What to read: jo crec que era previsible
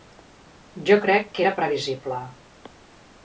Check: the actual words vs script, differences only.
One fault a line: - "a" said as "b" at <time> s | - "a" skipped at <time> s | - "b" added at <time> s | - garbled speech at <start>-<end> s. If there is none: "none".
none